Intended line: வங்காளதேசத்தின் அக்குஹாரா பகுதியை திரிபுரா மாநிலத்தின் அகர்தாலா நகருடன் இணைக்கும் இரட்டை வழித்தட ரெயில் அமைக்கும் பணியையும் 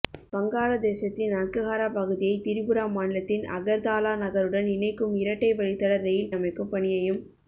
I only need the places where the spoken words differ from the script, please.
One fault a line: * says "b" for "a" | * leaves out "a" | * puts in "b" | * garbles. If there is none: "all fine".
all fine